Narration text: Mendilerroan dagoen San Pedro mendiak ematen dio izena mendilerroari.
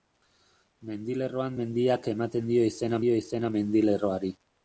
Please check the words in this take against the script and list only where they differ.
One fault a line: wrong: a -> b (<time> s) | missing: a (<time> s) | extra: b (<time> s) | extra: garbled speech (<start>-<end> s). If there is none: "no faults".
wrong: dagoen San Pedro mendiak ematen -> mendiak ematen dio izena (1.6 s)